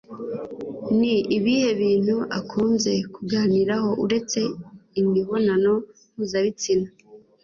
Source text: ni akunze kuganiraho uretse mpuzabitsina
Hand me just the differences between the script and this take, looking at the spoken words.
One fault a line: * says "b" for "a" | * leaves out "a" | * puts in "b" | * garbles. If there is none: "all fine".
* puts in "ibihe bintu"
* puts in "imibonano"